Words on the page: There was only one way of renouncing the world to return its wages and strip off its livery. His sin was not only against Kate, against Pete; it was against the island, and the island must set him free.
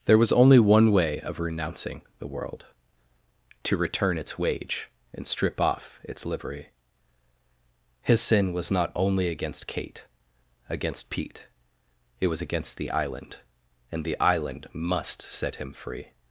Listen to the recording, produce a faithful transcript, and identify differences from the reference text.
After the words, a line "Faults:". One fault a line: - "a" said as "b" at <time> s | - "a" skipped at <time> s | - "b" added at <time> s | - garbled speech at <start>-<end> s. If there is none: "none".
There was only one way of renouncing the world to return its wage and strip off its livery. His sin was not only against Kate, against Pete; it was against the island, and the island must set him free.
Faults:
- "wages" said as "wage" at 4.4 s